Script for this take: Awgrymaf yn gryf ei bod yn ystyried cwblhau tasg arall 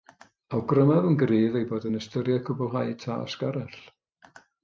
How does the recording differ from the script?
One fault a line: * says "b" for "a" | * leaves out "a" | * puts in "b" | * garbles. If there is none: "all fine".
all fine